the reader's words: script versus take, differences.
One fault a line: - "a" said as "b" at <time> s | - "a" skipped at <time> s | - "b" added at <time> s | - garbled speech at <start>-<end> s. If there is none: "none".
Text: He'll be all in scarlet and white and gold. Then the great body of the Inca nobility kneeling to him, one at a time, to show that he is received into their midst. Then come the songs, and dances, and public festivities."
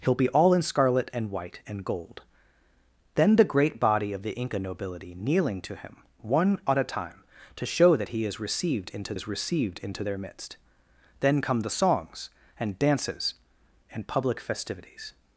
- "is received into" added at 9.1 s